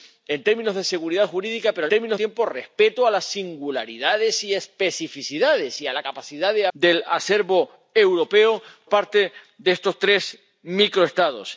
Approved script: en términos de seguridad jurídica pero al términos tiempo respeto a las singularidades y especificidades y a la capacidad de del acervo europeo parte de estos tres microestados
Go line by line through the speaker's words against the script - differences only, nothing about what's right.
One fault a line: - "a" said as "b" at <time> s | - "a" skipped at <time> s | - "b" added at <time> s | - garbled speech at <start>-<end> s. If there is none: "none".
none